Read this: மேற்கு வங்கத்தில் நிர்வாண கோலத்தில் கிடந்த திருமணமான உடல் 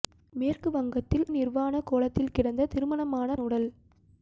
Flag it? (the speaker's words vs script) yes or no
no